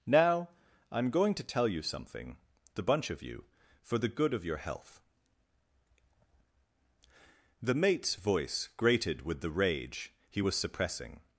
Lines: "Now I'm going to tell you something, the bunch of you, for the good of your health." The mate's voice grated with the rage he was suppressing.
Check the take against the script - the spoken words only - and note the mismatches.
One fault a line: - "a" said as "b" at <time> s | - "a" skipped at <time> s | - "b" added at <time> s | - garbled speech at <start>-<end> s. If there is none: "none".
none